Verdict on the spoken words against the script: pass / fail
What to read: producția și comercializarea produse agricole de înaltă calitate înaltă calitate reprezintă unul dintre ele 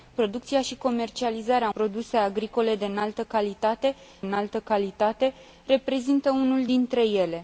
pass